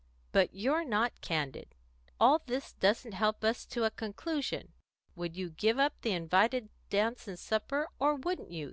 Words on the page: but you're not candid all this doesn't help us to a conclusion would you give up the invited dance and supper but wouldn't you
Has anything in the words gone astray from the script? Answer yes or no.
yes